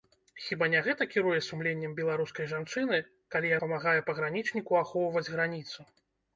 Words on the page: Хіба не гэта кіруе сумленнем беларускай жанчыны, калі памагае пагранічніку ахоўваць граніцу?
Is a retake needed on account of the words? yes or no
no